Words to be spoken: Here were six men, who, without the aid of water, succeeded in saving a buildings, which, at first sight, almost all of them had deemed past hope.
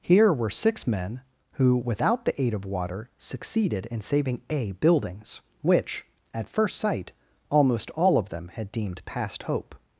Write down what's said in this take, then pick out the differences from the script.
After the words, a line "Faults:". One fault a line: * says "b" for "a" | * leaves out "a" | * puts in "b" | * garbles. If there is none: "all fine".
Here were six men, who, without the aid of water, succeeded in saving a buildings, which, at first sight, almost all of them had deemed past hope.
Faults:
all fine